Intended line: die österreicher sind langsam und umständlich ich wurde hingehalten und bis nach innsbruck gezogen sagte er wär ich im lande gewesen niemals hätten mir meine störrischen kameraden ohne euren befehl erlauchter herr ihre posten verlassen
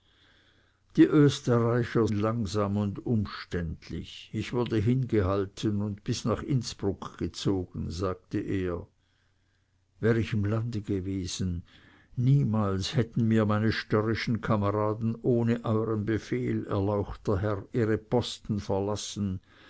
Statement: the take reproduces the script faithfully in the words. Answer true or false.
false